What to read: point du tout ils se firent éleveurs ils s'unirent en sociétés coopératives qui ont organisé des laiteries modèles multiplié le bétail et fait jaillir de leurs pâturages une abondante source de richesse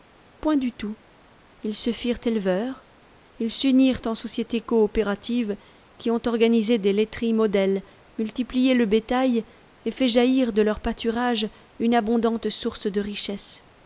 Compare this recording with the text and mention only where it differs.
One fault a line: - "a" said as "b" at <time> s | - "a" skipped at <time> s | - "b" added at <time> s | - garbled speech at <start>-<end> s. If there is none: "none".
none